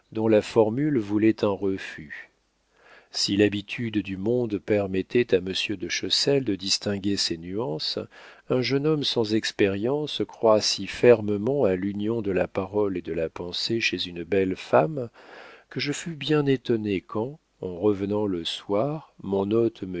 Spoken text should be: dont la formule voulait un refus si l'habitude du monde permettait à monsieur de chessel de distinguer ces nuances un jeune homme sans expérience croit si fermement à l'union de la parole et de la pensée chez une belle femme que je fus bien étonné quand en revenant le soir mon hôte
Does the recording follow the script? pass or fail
pass